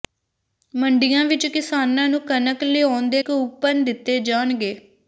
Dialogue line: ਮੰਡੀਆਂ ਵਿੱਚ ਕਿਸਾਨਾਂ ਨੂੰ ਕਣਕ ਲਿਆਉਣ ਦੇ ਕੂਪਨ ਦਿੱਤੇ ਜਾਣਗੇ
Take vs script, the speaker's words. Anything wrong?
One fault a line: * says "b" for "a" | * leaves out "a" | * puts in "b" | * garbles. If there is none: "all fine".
all fine